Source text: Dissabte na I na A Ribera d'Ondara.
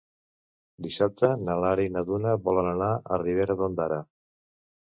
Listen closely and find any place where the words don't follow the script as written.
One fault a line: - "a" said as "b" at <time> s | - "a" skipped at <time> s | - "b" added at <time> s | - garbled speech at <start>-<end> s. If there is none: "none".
- "Lara" added at 1.7 s
- "Duna volen anar" added at 2.1 s